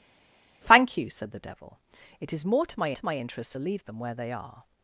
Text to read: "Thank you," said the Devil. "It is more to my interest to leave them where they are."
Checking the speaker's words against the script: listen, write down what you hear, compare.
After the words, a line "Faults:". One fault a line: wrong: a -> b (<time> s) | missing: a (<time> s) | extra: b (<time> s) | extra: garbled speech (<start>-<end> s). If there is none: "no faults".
"Thank you," said the Devil. "It is more to my to my interest to leave them where they are."
Faults:
extra: to my (2.9 s)